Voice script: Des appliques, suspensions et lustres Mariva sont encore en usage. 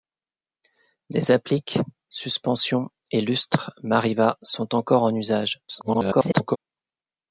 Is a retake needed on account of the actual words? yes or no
yes